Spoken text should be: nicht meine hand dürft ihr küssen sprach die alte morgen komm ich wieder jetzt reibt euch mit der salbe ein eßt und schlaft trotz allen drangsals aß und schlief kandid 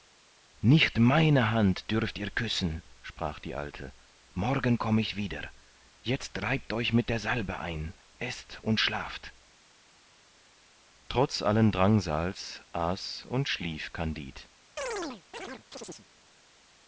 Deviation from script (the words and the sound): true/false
true